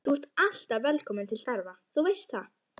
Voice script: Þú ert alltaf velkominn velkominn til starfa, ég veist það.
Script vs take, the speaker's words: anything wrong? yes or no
yes